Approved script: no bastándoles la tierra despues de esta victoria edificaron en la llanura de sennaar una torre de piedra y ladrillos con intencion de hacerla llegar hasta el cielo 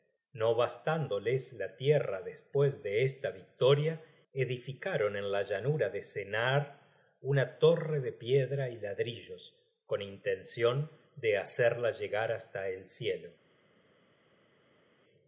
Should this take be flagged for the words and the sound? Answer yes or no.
no